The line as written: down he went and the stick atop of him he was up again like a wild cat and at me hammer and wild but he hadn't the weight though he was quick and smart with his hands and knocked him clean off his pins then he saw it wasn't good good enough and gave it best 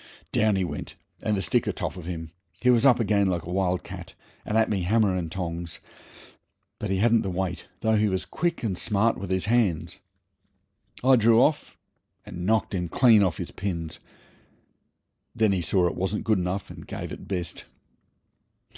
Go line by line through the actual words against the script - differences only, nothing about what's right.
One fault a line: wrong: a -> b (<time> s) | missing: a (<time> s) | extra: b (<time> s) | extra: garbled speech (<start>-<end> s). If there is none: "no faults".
wrong: wild -> tongs (5.3 s)
extra: i drew off (11.0 s)
missing: good (16.4 s)